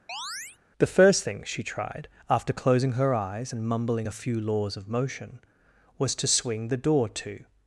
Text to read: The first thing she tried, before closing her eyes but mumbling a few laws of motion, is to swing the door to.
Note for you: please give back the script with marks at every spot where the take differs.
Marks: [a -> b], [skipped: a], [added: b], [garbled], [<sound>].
[chirp] The first thing she tried, [before -> after] closing her eyes [but -> and] mumbling a few laws of motion, [is -> was] to swing the door to.